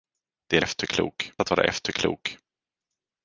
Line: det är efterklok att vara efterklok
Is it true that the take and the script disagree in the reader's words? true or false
false